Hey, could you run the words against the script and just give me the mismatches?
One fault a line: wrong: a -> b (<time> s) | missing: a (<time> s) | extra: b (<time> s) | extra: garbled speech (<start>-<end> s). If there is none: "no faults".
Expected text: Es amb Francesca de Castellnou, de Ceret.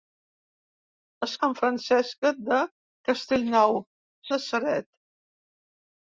no faults